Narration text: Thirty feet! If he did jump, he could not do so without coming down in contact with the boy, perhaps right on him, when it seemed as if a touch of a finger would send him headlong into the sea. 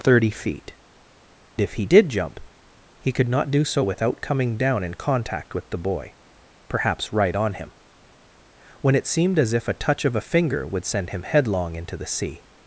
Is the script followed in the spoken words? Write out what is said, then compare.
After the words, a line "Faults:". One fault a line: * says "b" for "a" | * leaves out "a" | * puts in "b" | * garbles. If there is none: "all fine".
Thirty feet! If he did jump, he could not do so without coming down in contact with the boy, perhaps right on him, when it seemed as if a touch of a finger would send him headlong into the sea.
Faults:
all fine